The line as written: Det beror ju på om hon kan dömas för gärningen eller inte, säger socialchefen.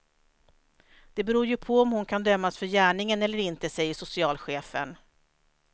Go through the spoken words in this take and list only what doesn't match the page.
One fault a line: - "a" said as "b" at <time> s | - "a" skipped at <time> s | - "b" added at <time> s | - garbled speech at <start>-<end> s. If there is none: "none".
none